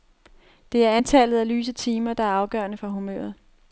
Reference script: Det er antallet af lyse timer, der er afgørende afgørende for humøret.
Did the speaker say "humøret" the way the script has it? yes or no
yes